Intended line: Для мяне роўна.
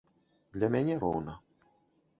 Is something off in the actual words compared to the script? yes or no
no